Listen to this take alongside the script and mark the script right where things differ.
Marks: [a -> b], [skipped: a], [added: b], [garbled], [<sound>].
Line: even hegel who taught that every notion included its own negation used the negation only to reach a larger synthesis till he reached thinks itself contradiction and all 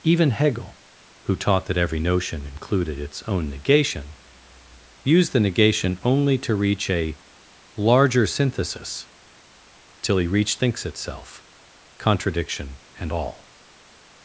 even hegel who taught that every notion included its own negation used the negation only to reach a larger synthesis till he reached thinks itself contradiction and all